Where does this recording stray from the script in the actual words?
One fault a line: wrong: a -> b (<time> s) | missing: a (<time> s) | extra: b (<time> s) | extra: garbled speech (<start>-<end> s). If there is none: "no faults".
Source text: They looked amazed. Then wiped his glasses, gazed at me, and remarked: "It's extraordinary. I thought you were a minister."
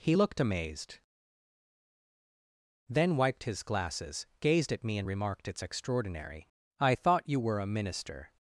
wrong: They -> He (0.0 s)